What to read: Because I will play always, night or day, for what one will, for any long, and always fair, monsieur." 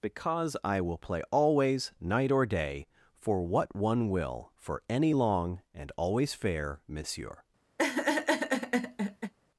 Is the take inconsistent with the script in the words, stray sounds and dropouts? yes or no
yes